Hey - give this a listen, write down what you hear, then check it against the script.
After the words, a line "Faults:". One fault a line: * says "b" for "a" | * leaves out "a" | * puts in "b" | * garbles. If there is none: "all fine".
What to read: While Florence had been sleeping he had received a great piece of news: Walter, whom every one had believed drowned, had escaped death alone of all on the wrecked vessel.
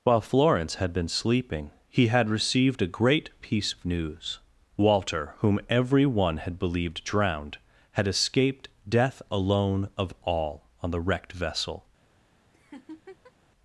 While Florence had been sleeping he had received a great piece of news: Walter, whom every one had believed drowned, had escaped death alone of all on the wrecked vessel.
Faults:
all fine